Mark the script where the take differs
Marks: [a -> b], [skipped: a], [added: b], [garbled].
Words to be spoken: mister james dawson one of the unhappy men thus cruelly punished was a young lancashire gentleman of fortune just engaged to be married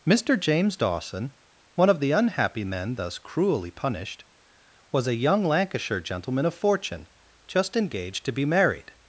mister james dawson one of the unhappy men thus cruelly punished was a young lancashire gentleman of fortune just engaged to be married